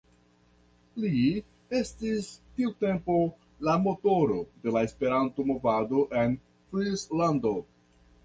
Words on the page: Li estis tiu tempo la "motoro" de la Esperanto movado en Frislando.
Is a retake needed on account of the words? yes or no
no